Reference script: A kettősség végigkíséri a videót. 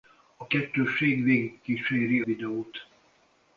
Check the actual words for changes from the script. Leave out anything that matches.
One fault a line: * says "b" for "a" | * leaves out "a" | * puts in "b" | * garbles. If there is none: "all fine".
* leaves out "a"